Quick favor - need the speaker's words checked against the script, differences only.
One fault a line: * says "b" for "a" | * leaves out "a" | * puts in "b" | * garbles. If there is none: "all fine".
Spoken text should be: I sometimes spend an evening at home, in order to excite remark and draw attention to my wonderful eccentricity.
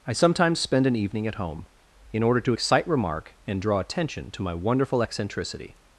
all fine